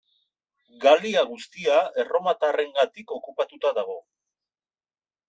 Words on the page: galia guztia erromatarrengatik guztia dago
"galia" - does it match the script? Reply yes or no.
yes